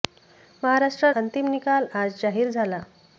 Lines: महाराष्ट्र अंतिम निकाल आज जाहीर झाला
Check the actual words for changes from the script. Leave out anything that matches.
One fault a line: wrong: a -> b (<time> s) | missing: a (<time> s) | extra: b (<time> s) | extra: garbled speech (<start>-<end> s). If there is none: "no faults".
no faults